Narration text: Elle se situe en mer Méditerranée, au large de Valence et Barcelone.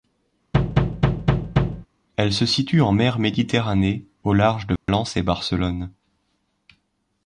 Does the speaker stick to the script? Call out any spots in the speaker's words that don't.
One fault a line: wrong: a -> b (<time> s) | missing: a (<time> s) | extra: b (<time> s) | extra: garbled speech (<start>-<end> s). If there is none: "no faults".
no faults